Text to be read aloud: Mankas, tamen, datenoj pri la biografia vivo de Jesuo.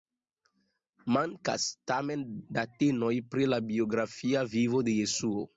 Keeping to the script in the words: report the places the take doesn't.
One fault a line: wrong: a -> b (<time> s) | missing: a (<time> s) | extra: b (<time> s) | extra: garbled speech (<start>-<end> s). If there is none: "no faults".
no faults